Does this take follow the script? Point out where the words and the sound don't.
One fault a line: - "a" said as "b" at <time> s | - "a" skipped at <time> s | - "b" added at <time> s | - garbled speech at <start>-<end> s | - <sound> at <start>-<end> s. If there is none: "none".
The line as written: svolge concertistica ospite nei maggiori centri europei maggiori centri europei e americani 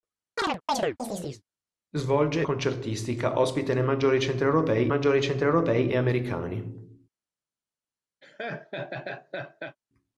- chirp at 0.4-1.4 s
- laugh at 8.2-9.8 s